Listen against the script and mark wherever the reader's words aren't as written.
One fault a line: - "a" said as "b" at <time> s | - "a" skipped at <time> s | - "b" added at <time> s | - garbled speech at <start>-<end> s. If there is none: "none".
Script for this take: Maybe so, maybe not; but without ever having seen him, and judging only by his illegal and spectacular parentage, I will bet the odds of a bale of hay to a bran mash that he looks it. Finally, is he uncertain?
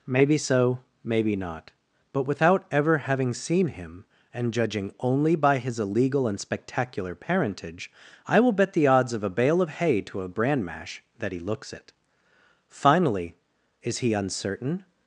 none